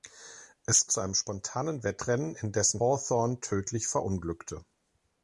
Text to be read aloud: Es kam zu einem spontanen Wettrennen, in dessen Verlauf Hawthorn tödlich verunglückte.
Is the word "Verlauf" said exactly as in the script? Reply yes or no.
no